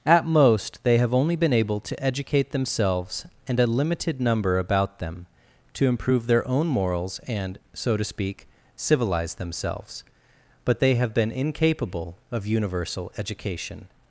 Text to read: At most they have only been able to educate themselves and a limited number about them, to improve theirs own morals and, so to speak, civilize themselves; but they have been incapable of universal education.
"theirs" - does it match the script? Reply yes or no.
no